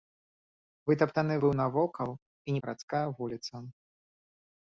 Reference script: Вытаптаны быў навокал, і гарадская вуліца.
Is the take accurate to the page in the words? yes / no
yes